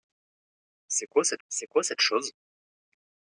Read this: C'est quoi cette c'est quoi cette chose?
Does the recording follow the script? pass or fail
pass